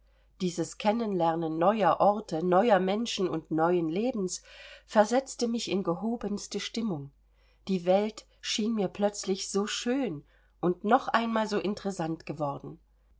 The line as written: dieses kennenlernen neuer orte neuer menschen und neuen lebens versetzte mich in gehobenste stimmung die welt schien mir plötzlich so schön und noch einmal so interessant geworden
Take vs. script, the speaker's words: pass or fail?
pass